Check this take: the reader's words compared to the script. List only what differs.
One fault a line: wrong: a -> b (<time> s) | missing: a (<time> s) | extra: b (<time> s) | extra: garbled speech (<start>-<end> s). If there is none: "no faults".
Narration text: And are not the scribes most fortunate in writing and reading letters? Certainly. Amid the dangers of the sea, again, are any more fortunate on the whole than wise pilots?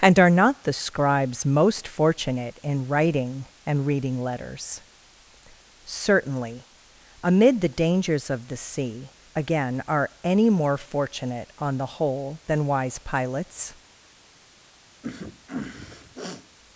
no faults